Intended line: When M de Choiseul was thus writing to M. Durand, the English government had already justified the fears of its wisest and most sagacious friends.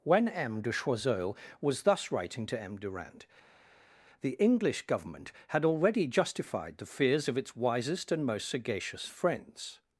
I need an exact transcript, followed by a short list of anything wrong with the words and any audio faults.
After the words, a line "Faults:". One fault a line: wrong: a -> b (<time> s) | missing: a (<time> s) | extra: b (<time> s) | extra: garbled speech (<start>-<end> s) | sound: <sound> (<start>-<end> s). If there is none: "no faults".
When M de Choiseul was thus writing to M. Durand, the English government had already justified the fears of its wisest and most sagacious friends.
Faults:
no faults